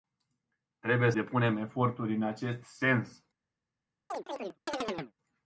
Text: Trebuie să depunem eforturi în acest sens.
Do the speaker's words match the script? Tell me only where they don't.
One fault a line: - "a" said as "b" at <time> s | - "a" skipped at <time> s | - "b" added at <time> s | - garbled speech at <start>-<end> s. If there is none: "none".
- "să" skipped at 1.1 s